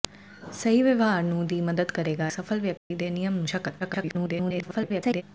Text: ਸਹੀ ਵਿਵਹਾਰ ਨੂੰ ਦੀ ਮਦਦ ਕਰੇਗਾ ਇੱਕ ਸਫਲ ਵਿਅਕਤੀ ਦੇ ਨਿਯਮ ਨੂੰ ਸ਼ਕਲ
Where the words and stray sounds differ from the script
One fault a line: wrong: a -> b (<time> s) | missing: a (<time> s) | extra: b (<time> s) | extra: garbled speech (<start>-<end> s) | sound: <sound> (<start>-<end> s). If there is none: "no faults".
missing: ਇੱਕ (2.3 s)
sound: dropout (2.8-2.9 s)
extra: garbled speech (3.8-5.2 s)